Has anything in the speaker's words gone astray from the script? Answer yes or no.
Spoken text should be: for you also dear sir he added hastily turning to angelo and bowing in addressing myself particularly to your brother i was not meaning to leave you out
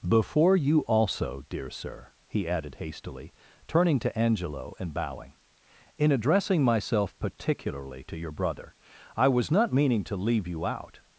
yes